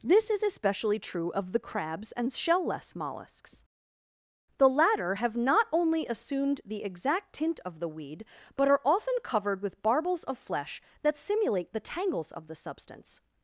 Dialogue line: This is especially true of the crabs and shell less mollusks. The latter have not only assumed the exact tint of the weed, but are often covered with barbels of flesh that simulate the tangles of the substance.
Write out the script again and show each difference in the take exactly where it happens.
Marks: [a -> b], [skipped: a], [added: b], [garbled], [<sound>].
This is especially true of the crabs and shell less mollusks. The latter have not only assumed the exact tint of the weed, but are often covered with barbels of flesh that simulate the tangles of the substance.